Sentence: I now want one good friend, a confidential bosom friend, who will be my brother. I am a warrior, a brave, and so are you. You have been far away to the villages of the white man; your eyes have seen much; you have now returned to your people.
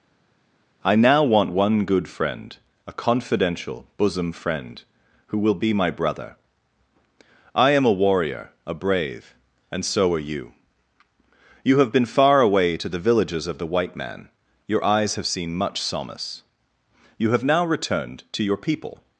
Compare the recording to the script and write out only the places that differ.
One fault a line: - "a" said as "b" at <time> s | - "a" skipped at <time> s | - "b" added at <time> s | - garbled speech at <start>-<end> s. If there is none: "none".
- "solace" added at 15.8 s